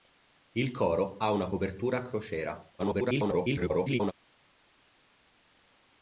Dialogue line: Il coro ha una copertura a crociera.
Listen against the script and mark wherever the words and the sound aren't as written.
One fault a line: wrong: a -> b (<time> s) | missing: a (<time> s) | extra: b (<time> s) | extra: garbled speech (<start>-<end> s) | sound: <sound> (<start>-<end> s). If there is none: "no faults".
extra: garbled speech (2.8-4.1 s)